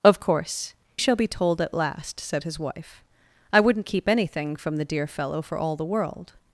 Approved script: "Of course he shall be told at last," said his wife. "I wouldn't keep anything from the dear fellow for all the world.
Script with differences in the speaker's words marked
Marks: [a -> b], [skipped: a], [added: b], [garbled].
"Of course [skipped: he] shall be told at last," said his wife. "I wouldn't keep anything from the dear fellow for all the world.